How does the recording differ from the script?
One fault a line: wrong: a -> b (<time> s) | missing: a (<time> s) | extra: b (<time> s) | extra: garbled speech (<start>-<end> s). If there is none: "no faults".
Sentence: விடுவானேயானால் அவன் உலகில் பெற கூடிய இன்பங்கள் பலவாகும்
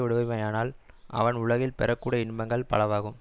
no faults